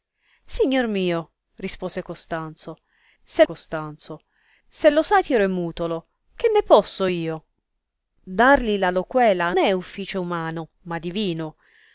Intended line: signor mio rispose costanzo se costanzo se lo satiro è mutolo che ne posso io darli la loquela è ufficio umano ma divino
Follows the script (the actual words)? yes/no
yes